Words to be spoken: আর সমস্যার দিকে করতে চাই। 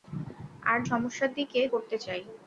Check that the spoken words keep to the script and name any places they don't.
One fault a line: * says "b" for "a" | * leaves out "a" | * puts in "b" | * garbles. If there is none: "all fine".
all fine